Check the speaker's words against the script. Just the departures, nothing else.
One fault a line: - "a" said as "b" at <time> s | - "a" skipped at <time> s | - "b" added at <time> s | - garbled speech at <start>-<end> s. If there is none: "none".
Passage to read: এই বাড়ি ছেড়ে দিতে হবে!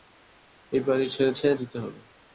- "ছেড়ে" added at 1.3 s